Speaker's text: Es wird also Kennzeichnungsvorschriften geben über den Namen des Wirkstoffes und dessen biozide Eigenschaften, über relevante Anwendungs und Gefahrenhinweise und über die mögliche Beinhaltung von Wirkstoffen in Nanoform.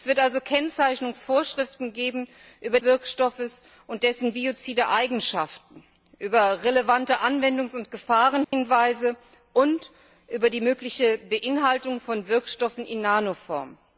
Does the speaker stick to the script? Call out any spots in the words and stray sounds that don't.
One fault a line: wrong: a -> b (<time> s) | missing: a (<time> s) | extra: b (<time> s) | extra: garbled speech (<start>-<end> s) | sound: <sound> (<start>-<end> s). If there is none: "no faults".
missing: den Namen des (2.8 s)
sound: dropout (8.4-8.5 s)